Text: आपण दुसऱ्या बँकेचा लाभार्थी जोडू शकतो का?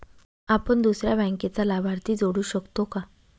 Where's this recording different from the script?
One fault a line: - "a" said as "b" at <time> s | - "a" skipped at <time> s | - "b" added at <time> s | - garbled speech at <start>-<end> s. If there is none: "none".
none